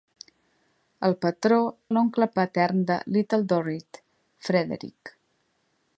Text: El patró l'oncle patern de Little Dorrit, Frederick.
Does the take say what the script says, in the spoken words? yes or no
yes